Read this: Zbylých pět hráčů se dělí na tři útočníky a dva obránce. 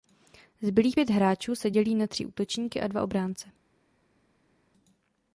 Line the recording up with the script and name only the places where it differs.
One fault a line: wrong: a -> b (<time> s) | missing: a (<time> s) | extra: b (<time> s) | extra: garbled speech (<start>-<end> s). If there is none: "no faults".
no faults